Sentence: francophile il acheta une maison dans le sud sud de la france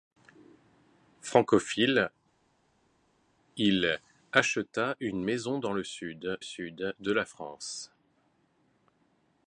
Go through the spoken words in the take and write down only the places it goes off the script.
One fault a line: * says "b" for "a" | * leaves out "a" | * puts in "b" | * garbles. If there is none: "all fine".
all fine